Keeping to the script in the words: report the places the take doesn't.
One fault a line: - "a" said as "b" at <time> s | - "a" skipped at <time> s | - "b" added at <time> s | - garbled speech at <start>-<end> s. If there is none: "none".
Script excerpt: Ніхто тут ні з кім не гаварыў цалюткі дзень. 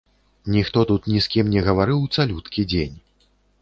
none